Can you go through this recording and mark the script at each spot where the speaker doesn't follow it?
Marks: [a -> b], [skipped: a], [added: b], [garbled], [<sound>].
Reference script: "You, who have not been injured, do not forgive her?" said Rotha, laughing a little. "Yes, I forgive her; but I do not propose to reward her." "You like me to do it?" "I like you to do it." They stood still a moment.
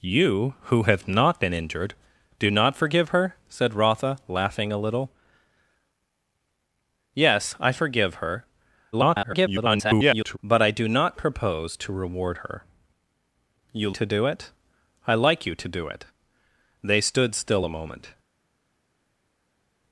"You, who have not been injured, do not forgive her?" said Rotha, laughing a little. "Yes, I forgive her; [garbled] but I do not propose to reward her." "You [skipped: like me] to do it?" "I like you to do it." They stood still a moment.